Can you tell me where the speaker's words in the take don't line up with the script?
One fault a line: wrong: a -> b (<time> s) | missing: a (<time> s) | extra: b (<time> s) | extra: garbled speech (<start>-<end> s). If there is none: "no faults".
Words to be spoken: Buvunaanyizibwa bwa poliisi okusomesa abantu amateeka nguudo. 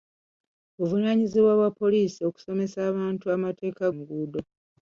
no faults